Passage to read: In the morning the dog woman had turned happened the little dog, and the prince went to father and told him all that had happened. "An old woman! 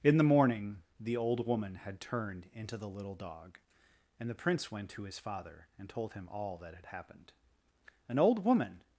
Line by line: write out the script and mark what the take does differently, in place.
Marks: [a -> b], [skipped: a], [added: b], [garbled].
In the morning the [dog -> old] woman had turned [happened -> into] the little dog, and the prince went to [added: his] father and told him all that had happened. "An old woman!